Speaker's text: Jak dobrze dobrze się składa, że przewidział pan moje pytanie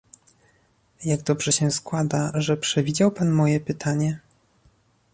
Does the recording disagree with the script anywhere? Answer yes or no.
yes